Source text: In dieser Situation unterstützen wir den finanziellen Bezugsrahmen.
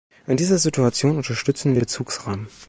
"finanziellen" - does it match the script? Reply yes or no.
no